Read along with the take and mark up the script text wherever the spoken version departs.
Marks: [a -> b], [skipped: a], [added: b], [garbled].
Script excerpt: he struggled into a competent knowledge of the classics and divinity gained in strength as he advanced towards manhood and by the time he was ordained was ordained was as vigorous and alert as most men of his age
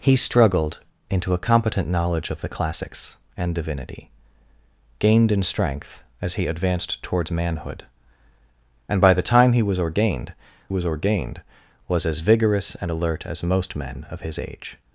he struggled into a competent knowledge of the classics and divinity gained in strength as he advanced towards manhood and by the time he was ordained was ordained was as vigorous and alert as most men of his age